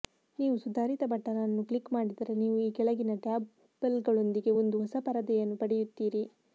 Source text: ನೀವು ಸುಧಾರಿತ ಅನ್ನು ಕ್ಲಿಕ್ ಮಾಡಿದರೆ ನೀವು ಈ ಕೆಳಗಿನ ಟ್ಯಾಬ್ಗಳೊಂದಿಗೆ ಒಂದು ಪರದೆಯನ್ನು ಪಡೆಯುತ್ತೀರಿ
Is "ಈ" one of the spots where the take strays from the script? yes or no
no